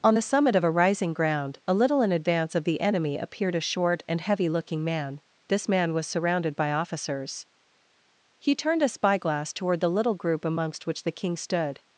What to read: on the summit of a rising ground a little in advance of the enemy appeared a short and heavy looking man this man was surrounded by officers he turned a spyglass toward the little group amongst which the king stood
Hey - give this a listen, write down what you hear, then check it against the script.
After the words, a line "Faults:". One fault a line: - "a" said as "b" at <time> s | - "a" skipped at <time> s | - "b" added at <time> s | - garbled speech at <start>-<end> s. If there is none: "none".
on the summit of a rising ground a little in advance of the enemy appeared a short and heavy looking man this man was surrounded by officers he turned a spyglass toward the little group amongst which the king stood
Faults:
none